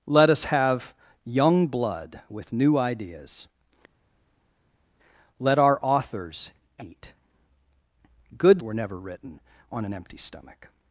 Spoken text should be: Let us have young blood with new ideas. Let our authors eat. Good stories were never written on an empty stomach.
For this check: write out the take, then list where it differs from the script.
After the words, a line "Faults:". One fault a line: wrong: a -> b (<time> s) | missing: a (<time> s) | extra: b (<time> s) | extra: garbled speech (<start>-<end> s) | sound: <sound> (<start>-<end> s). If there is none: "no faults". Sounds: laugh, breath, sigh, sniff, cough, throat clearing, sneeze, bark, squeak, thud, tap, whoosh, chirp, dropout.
Let us have young blood with new ideas. Let our authors eat. Good were never written on an empty stomach.
Faults:
missing: stories (8.6 s)